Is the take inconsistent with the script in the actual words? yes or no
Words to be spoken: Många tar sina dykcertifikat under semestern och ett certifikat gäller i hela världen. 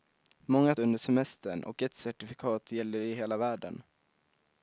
yes